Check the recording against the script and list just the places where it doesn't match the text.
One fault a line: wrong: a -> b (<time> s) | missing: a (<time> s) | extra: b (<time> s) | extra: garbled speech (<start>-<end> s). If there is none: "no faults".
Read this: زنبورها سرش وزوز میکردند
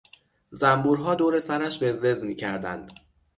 extra: دور (1.1 s)